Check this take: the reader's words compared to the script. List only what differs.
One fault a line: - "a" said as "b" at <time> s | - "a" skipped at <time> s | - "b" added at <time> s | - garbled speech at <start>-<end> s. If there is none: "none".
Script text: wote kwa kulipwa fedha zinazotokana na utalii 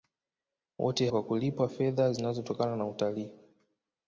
none